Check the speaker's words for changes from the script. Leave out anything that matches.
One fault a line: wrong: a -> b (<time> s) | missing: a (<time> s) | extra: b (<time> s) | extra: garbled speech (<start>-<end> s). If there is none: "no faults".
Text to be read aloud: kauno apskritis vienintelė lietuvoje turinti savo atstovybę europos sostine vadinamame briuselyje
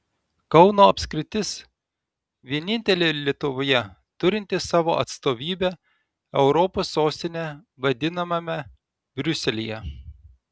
no faults